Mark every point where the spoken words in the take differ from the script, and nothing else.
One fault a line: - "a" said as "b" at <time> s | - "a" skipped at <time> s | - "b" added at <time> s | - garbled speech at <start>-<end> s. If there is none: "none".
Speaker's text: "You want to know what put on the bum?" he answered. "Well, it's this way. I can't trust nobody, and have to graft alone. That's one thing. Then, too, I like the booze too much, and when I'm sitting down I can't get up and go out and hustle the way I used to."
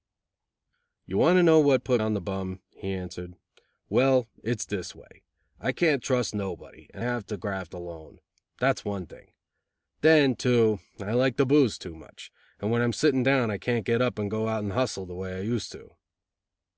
none